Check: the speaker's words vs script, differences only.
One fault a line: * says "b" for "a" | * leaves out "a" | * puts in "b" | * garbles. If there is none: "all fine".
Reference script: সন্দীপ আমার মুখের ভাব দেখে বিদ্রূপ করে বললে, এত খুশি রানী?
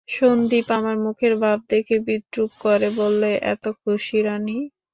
all fine